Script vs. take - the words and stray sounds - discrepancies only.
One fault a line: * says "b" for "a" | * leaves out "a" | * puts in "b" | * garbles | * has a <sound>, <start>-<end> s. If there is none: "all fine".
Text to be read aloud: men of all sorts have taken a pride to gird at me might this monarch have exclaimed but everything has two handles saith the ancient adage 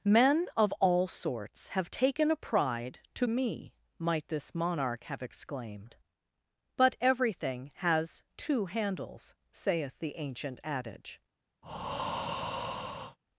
* leaves out "gird at"
* has a breath, 11.6-13.2 s